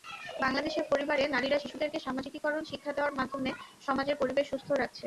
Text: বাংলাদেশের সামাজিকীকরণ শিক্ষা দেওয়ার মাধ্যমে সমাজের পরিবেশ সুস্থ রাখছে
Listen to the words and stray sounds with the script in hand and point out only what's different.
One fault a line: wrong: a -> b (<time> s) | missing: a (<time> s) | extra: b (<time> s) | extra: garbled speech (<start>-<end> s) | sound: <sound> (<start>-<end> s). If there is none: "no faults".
extra: পরিবারে নারীরা শিশুদেরকে (0.9 s)